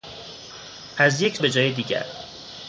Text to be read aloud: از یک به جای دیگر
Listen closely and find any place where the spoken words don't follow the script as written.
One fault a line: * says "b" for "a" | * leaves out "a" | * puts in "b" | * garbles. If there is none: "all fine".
all fine